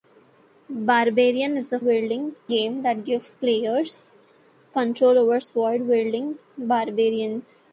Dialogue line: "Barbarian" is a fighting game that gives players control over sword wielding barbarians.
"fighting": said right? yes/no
no